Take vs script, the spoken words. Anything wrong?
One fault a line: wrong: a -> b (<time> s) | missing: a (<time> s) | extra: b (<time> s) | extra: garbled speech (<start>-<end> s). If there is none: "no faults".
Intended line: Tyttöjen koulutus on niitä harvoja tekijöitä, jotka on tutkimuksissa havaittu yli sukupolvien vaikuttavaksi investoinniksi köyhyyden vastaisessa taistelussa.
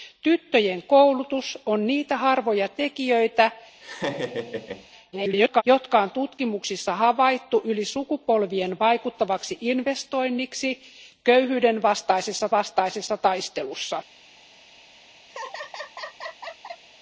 extra: garbled speech (5.1-5.6 s)
extra: vastaisessa (12.5 s)